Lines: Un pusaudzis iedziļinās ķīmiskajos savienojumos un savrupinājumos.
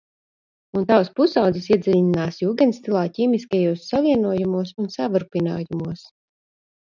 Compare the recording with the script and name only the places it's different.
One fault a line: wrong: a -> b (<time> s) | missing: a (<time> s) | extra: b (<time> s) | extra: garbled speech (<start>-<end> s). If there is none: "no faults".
extra: tavs (0.9 s)
extra: jūgendstilā (2.4 s)